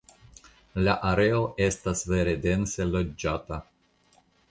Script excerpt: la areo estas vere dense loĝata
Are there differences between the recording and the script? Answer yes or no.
no